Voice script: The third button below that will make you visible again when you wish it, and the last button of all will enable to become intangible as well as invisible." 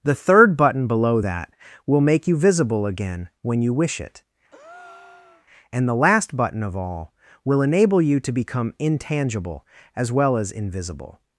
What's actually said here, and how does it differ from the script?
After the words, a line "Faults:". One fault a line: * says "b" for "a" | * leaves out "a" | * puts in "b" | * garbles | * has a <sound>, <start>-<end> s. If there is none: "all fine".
The third button below that will make you visible again when you wish it, and the last button of all will enable you to become intangible as well as invisible."
Faults:
* has a breath, 4.5-5.5 s
* puts in "you"